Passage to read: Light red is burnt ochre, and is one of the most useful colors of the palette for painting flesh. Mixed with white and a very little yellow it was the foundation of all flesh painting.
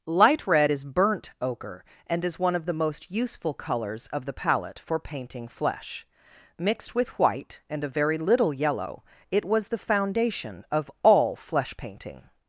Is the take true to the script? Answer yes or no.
yes